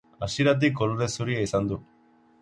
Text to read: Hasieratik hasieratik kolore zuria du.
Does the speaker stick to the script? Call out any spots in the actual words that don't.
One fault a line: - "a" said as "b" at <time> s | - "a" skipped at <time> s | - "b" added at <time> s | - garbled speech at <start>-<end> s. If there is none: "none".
- "hasieratik" skipped at 0.7 s
- "izan" added at 1.4 s